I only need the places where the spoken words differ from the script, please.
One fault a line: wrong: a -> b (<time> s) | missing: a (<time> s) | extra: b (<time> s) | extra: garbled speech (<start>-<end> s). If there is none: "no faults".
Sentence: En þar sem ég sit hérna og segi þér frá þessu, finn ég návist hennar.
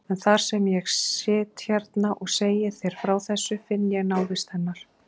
no faults